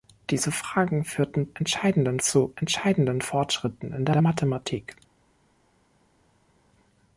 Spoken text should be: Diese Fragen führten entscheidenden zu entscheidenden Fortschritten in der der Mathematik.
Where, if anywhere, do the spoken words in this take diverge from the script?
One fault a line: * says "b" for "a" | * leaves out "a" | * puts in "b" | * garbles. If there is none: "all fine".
all fine